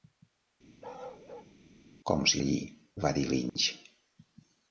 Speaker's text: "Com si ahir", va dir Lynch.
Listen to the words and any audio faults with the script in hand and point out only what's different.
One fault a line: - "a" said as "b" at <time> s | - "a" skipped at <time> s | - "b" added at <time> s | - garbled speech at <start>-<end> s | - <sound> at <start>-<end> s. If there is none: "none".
- bark at 0.8-1.5 s
- dropout at 3.5-3.6 s